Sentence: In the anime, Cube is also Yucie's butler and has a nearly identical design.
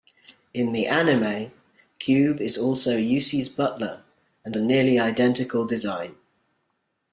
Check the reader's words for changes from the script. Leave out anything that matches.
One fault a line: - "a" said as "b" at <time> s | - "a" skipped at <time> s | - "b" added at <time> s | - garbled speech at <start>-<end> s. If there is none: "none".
- "has" skipped at 4.5 s